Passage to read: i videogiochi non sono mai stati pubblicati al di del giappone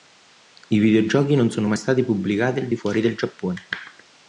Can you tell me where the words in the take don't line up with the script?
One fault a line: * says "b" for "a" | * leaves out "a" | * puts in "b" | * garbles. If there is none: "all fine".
* puts in "fuori"